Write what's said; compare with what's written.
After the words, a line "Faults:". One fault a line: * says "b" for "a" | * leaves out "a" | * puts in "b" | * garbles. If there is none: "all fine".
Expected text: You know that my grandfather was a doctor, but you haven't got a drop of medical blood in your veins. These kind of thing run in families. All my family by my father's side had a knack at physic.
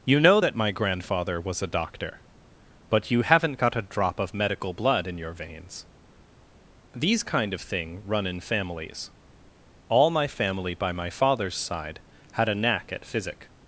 You know that my grandfather was a doctor, but you haven't got a drop of medical blood in your veins. These kind of thing run in families. All my family by my father's side had a knack at physic.
Faults:
all fine